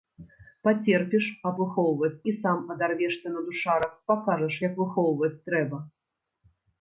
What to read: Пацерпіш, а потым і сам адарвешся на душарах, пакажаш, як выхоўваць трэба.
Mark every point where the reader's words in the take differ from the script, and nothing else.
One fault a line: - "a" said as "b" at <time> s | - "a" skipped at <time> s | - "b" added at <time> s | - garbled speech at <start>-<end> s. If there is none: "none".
- "потым" said as "выхоўваць" at 1.7 s